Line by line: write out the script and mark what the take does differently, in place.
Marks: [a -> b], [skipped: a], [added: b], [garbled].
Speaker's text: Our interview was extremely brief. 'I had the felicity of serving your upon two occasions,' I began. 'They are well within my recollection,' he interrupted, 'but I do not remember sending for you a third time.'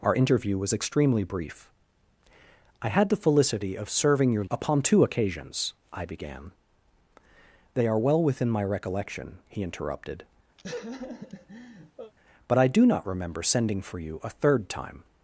Our interview was extremely brief. 'I had the felicity of serving your upon two occasions,' I began. 'They are well within my recollection,' he interrupted, 'but I do not remember sending for you a third time.'